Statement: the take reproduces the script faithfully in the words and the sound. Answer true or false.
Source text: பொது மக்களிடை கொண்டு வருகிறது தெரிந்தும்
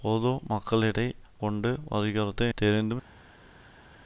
true